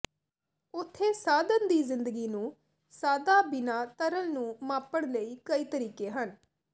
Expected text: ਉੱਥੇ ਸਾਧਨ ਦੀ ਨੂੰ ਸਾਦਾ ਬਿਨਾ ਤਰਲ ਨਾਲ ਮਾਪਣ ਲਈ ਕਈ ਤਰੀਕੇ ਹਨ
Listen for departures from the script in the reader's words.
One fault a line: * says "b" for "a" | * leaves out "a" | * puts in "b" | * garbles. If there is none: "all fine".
* puts in "ਜ਼ਿੰਦਗੀ"
* says "ਨੂੰ" for "ਨਾਲ"